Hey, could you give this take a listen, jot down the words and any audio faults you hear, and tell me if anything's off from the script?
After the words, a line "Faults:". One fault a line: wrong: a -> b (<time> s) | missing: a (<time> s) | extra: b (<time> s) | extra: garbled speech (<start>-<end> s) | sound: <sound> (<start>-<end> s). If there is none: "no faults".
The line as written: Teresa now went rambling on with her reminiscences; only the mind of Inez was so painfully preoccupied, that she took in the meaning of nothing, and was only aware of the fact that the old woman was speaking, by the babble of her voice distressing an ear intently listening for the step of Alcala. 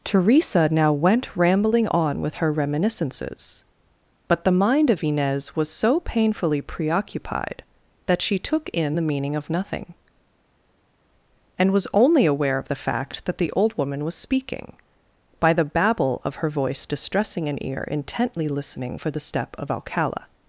Teresa now went rambling on with her reminiscences; but the mind of Inez was so painfully preoccupied, that she took in the meaning of nothing, and was only aware of the fact that the old woman was speaking, by the babble of her voice distressing an ear intently listening for the step of Alcala.
Faults:
wrong: only -> but (4.3 s)